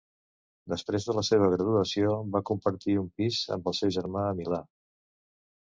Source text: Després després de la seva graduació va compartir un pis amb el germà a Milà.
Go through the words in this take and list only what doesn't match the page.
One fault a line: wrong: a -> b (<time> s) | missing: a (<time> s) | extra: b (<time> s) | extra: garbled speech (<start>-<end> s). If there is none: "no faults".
missing: després (1.1 s)
extra: seu (3.8 s)